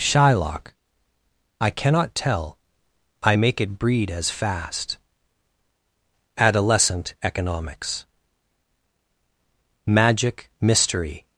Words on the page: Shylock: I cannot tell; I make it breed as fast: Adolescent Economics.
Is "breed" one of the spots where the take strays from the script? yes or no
no